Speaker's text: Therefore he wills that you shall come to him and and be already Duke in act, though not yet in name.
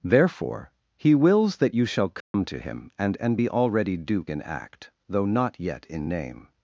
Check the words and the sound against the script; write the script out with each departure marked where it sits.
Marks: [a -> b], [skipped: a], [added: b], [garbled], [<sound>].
Therefore he wills that you shall come [dropout] to him and and be already Duke in act, though not yet in name.